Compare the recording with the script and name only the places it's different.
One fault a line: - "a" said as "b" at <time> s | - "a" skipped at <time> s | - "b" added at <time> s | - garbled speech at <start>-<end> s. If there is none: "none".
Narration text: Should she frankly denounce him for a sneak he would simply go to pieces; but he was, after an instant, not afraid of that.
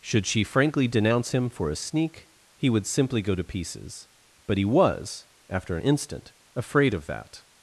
- "not" skipped at 6.3 s